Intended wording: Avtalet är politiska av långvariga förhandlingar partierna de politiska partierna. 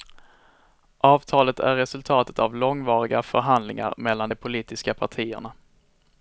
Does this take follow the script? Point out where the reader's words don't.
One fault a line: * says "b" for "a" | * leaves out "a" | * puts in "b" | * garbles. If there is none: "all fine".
* says "resultatet" for "politiska"
* says "mellan" for "partierna"